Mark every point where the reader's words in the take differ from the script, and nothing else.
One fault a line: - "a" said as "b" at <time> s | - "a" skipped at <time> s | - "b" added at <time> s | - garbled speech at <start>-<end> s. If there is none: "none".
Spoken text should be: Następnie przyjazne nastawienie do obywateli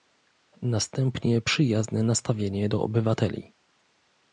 none